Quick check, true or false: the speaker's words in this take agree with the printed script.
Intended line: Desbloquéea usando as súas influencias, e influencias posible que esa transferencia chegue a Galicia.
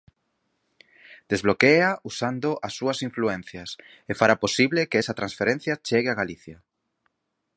false